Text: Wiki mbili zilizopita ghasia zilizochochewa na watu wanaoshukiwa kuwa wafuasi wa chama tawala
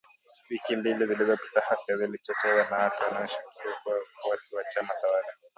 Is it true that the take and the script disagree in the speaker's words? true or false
false